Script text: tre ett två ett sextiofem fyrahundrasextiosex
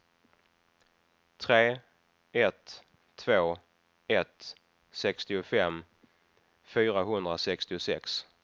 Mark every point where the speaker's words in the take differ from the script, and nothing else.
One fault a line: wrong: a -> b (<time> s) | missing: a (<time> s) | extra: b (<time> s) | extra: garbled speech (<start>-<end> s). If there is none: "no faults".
no faults